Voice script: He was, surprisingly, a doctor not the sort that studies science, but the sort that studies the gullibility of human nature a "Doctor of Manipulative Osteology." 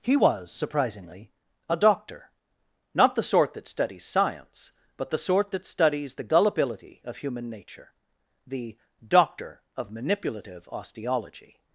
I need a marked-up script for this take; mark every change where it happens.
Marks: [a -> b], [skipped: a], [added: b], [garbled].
He was, surprisingly, a doctor not the sort that studies science, but the sort that studies the gullibility of human nature [a -> the] "Doctor of Manipulative Osteology."